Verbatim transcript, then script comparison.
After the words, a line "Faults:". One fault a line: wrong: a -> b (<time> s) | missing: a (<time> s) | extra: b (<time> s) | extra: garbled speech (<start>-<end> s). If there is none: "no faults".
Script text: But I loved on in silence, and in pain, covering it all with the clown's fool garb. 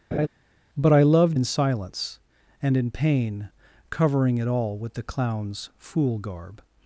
But I loved in silence, and in pain, covering it all with the clown's fool garb.
Faults:
missing: on (1.4 s)